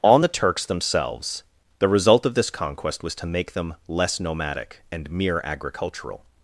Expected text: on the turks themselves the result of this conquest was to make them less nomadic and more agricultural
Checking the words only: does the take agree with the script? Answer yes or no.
no